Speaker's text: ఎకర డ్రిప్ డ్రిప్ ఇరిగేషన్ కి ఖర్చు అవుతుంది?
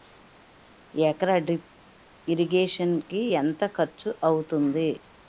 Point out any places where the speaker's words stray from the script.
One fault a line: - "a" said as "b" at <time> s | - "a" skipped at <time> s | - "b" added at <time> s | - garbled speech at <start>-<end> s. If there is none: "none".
- "డ్రిప్" skipped at 1.7 s
- "ఎంత" added at 3.3 s